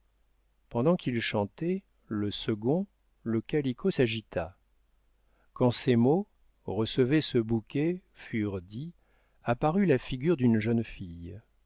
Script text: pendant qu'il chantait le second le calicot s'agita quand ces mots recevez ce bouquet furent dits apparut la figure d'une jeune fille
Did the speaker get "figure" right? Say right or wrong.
right